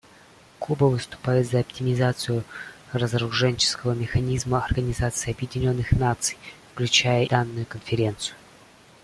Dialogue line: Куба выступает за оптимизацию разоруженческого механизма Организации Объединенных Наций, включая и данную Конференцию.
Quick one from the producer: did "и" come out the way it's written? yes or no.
no